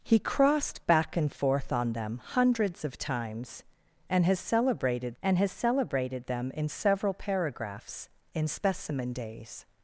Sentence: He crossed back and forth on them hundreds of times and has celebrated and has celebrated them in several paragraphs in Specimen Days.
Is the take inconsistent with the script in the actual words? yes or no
no